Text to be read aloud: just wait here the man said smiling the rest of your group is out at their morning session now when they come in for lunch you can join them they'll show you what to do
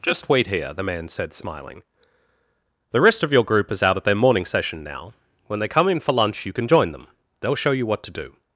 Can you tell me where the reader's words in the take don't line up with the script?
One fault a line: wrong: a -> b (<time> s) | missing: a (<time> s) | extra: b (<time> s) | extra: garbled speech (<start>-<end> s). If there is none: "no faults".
no faults